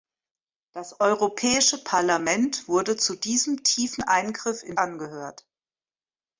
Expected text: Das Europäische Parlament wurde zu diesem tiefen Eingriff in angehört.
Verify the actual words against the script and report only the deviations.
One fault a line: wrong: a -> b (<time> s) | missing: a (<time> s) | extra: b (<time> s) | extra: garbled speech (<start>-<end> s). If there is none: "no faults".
no faults